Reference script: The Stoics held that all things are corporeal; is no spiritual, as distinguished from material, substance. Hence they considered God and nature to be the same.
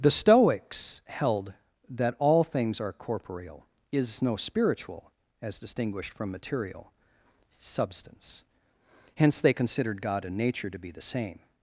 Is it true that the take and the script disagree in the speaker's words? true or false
false